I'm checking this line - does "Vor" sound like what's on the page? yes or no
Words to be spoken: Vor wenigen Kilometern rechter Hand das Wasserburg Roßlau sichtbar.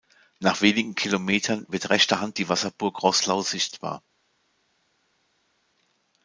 no